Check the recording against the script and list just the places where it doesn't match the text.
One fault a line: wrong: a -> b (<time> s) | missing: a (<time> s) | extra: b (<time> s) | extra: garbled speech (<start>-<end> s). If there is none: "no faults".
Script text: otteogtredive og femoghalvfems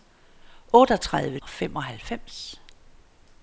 no faults